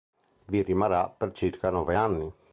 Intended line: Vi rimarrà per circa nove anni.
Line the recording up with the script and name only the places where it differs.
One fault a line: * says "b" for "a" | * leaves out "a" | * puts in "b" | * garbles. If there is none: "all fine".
all fine